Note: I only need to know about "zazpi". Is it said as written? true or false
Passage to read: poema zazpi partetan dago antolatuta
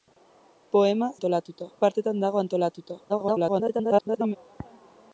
false